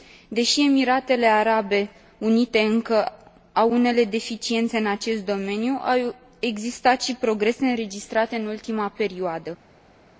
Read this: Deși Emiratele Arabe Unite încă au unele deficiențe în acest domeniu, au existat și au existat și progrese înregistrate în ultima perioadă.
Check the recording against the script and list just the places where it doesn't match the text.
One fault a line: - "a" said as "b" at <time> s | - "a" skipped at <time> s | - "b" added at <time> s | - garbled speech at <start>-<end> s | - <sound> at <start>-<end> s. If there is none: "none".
- "au existat și" skipped at 7.2 s